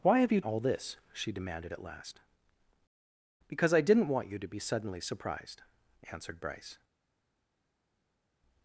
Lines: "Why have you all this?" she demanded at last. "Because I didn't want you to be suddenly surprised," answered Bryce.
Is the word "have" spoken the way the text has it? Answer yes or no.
yes